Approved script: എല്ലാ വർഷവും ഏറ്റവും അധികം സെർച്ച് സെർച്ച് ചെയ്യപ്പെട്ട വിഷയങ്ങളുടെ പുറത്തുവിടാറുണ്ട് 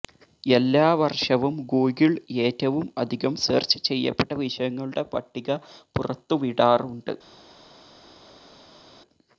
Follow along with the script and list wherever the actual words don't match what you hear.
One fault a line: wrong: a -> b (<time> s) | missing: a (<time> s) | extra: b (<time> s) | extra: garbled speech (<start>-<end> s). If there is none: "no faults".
extra: ഗൂഗിൾ (1.7 s)
missing: സെർച്ച് (3.8 s)
extra: പട്ടിക (5.1 s)